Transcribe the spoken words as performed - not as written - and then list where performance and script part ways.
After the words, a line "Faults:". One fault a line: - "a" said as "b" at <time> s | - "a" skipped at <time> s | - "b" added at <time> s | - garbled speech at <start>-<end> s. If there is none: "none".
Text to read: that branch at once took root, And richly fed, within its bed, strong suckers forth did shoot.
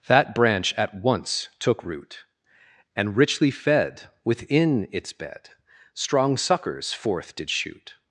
that branch at once took root, And richly fed, within its bed, strong suckers forth did shoot.
Faults:
none